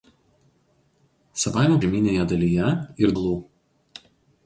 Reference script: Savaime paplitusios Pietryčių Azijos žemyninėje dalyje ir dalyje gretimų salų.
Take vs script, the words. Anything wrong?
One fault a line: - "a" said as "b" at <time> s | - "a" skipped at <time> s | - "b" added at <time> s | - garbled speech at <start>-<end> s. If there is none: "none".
- "paplitusios Pietryčių Azijos" skipped at 1.8 s
- "dalyje gretimų" skipped at 3.2 s